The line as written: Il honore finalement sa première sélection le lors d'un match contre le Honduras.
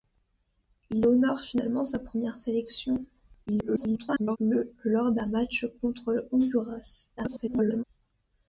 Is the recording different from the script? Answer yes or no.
yes